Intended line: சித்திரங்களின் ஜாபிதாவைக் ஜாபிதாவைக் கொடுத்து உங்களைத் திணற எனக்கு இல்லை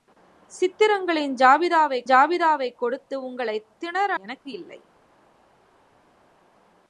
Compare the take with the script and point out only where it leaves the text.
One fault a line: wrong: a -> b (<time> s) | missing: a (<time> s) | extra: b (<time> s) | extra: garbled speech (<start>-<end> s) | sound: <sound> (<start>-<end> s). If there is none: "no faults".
no faults